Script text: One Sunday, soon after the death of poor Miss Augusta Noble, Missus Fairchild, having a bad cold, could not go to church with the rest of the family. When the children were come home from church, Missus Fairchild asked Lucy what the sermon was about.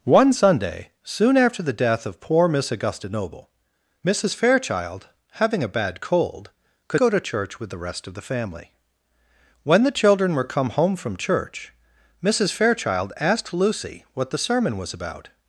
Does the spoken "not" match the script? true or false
false